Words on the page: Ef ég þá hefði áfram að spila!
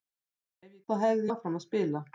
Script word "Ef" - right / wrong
right